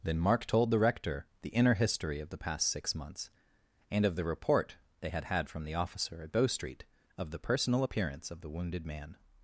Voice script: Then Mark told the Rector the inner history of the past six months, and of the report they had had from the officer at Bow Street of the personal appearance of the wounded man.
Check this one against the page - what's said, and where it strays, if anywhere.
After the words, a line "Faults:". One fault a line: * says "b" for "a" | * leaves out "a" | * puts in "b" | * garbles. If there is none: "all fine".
Then Mark told the Rector the inner history of the past six months, and of the report they had had from the officer at Bow Street of the personal appearance of the wounded man.
Faults:
all fine